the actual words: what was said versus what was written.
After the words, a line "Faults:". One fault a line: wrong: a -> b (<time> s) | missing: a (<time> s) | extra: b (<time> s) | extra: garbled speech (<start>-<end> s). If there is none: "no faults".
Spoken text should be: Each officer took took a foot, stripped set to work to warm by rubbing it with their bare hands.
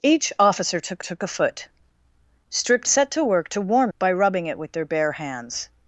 Each officer took took a foot, stripped set to work to warm by rubbing it with their bare hands.
Faults:
no faults